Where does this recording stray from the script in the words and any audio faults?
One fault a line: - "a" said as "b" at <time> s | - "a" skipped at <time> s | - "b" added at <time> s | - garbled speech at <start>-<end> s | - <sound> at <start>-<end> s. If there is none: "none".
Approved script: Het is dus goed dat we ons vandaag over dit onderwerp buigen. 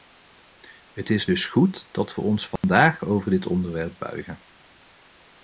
- dropout at 2.6-2.6 s